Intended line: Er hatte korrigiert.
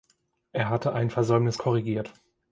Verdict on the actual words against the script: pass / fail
fail